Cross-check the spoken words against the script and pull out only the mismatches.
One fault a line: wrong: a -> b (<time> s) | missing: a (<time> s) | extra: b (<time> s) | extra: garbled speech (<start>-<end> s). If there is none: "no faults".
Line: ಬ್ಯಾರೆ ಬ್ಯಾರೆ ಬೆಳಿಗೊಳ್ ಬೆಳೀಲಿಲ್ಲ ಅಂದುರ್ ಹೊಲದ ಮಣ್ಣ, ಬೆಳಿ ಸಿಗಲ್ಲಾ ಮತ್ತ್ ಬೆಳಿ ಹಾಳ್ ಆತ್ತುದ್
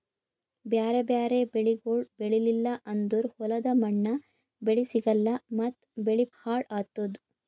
no faults